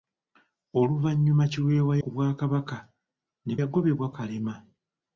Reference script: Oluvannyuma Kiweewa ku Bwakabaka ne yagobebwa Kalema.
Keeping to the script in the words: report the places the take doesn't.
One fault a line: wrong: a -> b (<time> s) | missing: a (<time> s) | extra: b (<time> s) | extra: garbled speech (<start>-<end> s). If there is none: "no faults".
no faults